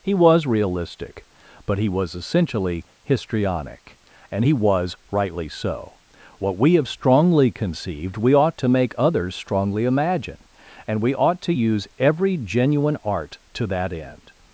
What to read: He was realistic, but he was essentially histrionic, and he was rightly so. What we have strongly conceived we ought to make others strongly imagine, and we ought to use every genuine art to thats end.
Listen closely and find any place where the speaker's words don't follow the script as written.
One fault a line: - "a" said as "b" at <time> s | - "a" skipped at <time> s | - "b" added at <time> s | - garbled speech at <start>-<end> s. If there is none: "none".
- "thats" said as "that" at 13.7 s